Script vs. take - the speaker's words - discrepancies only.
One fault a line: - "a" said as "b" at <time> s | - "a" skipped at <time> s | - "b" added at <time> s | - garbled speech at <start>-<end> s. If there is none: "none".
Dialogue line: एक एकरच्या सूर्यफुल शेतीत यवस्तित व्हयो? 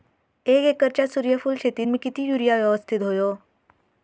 - "मी किती युरिया" added at 1.9 s